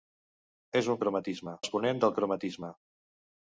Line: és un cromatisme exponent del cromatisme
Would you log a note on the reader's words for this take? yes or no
no